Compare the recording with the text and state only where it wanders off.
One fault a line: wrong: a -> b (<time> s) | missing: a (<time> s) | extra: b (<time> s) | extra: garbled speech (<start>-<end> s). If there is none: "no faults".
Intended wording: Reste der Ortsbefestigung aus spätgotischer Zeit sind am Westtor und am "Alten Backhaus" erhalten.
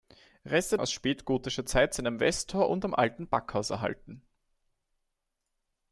missing: der Ortsbefestigung (0.8 s)